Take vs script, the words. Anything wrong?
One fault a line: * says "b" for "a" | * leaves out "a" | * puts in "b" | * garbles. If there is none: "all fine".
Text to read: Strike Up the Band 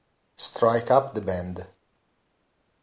all fine